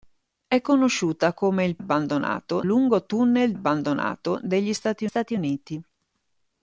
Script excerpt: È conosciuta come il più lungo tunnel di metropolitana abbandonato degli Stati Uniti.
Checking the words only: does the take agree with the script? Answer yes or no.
no